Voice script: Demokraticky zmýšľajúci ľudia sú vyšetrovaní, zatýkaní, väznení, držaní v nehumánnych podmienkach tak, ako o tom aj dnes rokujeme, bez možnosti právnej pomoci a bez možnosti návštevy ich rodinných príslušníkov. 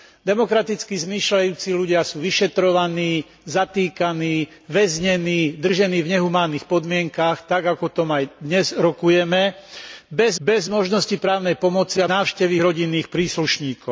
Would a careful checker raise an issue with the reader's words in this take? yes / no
yes